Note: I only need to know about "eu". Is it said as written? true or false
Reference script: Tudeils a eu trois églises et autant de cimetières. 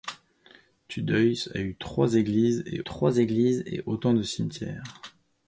true